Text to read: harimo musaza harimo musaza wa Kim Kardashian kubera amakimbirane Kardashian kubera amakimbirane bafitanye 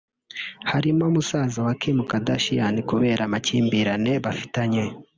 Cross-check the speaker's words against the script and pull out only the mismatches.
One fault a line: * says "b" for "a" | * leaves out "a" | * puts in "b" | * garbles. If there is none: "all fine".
* leaves out "harimo musaza"
* leaves out "Kardashian kubera amakimbirane"